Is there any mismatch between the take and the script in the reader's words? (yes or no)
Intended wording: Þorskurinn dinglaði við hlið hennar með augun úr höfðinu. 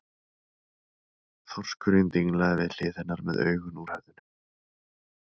no